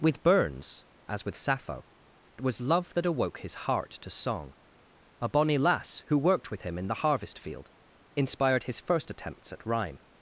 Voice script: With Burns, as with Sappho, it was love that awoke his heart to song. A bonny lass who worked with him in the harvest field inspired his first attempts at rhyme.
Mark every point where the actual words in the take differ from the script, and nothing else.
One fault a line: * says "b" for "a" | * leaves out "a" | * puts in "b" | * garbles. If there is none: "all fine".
* leaves out "it"